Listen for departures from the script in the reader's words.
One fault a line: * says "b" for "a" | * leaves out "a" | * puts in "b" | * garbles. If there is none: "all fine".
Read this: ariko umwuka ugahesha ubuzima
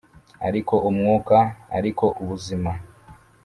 * says "ariko" for "ugahesha"